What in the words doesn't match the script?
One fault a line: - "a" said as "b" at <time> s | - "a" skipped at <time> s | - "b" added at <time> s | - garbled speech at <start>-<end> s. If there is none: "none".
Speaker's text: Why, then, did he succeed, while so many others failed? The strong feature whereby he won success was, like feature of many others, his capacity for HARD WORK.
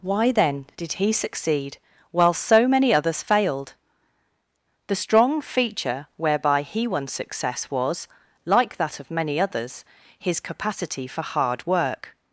- "feature" said as "that" at 8.8 s